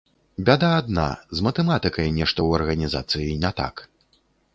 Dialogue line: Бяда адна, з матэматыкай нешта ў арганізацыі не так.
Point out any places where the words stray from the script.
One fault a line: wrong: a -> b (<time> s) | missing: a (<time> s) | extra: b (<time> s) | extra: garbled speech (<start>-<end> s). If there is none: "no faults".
no faults